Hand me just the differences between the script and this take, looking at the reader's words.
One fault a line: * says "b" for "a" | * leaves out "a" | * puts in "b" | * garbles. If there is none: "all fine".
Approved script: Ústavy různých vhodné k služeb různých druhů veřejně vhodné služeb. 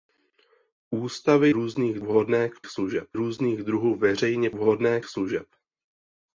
all fine